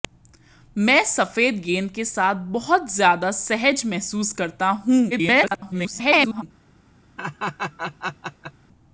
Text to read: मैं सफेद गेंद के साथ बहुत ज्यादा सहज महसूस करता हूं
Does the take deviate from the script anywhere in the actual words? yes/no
yes